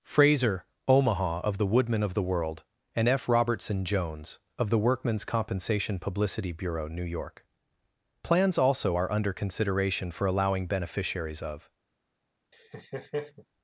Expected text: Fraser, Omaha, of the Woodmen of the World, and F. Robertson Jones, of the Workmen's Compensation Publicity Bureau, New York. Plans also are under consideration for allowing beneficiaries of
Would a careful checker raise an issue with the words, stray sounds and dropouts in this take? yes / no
yes